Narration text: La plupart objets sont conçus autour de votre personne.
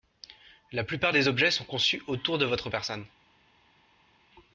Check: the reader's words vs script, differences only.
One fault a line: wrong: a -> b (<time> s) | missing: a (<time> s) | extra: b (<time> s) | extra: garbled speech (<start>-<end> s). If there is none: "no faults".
extra: des (1.1 s)